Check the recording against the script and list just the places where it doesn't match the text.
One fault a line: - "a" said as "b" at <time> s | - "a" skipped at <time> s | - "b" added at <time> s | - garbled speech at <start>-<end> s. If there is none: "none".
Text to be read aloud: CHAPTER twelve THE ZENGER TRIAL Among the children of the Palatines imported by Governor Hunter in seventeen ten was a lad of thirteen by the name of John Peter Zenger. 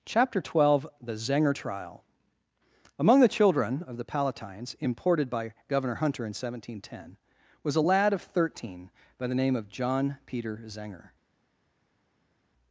none